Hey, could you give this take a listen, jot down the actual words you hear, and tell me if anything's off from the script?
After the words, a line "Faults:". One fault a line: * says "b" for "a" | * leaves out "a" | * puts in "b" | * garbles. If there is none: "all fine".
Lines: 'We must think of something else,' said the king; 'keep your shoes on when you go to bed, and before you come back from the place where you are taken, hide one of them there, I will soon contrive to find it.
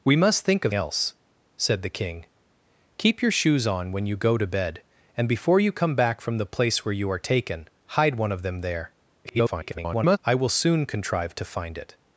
'We must think of else,' said the king; 'keep your shoes on when you go to bed, and before you come back from the place where you are taken, hide one of them there, [garbled] I will soon contrive to find it.
Faults:
* leaves out "something"
* garbles